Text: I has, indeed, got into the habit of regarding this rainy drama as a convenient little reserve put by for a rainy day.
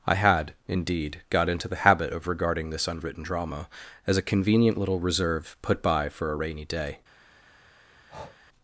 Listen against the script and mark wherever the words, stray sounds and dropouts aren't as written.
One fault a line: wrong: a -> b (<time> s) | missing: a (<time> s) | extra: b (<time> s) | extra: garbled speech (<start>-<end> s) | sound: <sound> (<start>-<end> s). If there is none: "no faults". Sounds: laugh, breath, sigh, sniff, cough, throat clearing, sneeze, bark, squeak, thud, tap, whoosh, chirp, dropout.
wrong: has -> had (0.1 s)
wrong: rainy -> unwritten (2.9 s)
sound: breath (8.1-8.4 s)